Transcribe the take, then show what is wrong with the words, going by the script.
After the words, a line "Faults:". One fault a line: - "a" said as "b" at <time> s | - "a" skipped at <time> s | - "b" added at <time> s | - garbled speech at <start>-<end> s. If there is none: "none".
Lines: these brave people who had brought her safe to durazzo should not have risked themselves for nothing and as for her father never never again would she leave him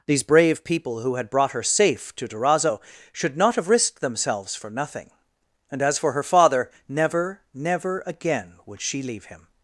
these brave people who had brought her safe to durazzo should not have risked themselves for nothing and as for her father never never again would she leave him
Faults:
none